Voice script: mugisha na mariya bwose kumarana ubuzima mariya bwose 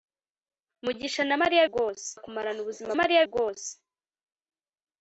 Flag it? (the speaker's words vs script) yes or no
no